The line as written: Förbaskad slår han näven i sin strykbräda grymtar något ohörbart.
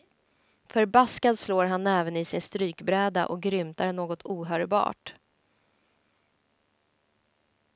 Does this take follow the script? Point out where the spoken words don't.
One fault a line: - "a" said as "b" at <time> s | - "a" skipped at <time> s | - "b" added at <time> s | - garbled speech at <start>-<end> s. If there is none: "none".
- "och" added at 3.2 s